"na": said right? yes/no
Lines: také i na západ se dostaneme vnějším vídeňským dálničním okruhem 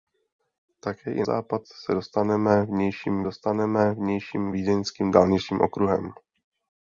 no